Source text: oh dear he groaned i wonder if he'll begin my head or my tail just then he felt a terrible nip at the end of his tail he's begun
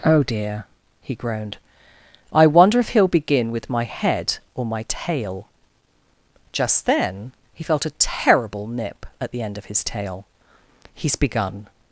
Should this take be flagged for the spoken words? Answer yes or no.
yes